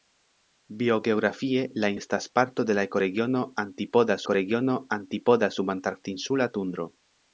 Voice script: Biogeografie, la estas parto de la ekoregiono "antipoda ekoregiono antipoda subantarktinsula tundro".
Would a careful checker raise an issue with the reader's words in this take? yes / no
no